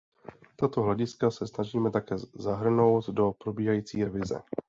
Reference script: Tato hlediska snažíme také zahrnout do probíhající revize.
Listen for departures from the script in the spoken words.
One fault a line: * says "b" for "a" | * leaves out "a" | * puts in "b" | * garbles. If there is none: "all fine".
* puts in "se"